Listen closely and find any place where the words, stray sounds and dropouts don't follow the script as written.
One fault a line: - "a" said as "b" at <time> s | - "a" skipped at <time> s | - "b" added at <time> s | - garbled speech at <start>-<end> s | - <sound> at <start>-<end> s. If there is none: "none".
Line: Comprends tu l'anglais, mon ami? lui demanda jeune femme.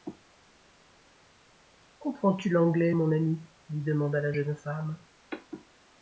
- "la" added at 4.2 s